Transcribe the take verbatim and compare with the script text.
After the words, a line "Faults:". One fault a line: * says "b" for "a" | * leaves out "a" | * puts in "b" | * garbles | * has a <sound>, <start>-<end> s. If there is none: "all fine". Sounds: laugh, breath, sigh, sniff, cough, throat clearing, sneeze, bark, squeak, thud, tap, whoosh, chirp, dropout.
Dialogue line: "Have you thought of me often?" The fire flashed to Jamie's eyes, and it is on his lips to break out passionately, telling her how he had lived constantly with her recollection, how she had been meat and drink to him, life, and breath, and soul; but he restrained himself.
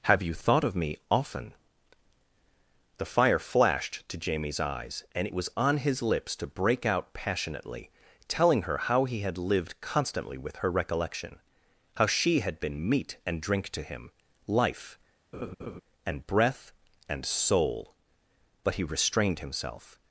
"Have you thought of me often?" The fire flashed to Jamie's eyes, and it was on his lips to break out passionately, telling her how he had lived constantly with her recollection, how she had been meat and drink to him, life, and breath, and soul; but he restrained himself.
Faults:
* says "was" for "is"
* has a laugh, 15.3-15.8 s